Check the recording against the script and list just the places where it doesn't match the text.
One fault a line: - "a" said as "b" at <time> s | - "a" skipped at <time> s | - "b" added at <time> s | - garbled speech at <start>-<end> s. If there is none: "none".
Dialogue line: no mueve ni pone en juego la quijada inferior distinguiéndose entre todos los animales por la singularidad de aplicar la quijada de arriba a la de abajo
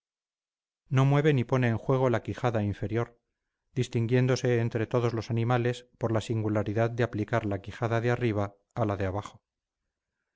none